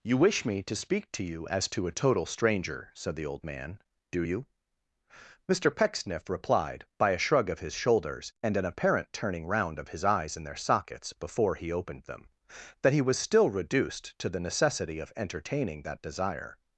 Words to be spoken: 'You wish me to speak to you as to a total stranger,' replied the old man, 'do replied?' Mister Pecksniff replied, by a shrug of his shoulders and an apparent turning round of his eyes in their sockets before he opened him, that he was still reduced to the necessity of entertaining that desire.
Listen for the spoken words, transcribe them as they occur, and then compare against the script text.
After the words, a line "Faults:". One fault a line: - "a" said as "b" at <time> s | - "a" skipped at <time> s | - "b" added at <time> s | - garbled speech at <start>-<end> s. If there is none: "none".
'You wish me to speak to you as to a total stranger,' said the old man, 'do you?' Mister Pecksniff replied, by a shrug of his shoulders and an apparent turning round of his eyes in their sockets before he opened them, that he was still reduced to the necessity of entertaining that desire.
Faults:
- "replied" said as "said" at 3.0 s
- "replied" said as "you" at 4.2 s
- "him" said as "them" at 12.0 s